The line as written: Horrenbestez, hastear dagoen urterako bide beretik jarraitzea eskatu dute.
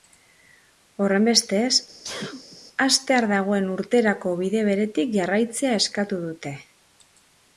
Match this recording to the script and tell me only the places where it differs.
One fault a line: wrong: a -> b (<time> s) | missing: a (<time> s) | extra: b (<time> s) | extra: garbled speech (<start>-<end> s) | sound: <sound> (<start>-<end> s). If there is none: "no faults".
sound: sneeze (2.0-2.6 s)